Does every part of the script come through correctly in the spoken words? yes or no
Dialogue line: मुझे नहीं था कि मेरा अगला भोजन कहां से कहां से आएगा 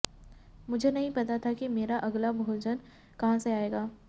no